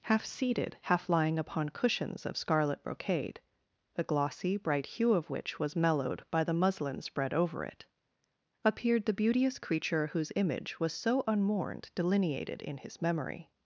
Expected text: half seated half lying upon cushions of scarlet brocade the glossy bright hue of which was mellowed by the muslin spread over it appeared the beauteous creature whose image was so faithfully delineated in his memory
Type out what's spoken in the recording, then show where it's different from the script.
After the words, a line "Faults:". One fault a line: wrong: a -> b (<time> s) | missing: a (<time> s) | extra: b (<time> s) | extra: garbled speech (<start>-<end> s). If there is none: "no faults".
half seated half lying upon cushions of scarlet brocade the glossy bright hue of which was mellowed by the muslin spread over it appeared the beauteous creature whose image was so unmourned delineated in his memory
Faults:
wrong: faithfully -> unmourned (11.3 s)